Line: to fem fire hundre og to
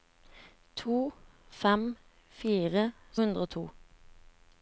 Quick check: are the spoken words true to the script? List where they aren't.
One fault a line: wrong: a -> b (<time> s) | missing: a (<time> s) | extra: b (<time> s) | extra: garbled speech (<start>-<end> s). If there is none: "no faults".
no faults